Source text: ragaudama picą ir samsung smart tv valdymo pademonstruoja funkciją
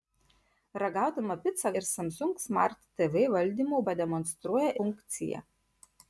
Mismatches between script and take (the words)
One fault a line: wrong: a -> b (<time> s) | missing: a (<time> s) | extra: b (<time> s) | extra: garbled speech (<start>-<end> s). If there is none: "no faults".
no faults